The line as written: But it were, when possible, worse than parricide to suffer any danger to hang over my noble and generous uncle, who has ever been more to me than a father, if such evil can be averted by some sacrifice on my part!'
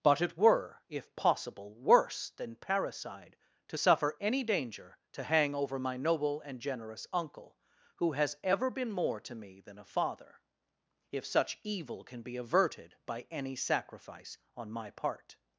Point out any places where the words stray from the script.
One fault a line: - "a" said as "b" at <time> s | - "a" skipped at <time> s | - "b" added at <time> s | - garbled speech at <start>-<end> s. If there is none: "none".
- "when" said as "if" at 0.9 s
- "some" said as "any" at 13.3 s